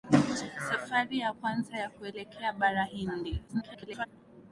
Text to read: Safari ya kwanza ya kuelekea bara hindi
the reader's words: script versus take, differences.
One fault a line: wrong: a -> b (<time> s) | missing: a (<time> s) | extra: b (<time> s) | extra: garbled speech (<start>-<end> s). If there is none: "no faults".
extra: garbled speech (3.5-4.1 s)